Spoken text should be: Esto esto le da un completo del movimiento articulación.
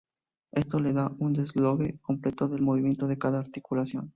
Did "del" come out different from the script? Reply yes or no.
no